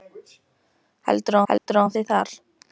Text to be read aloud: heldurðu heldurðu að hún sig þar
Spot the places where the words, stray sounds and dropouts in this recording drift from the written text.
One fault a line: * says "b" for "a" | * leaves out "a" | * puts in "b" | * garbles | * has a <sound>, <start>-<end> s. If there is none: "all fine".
* has a dropout, 1.6-1.7 s